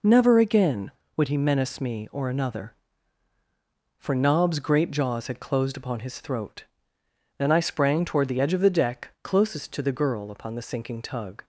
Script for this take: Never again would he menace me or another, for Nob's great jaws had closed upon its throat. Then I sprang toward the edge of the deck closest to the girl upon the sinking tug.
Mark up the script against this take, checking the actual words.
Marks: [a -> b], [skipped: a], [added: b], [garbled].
Never again would he menace me or another, for Nob's great jaws had closed upon [its -> his] throat. Then I sprang toward the edge of the deck closest to the girl upon the sinking tug.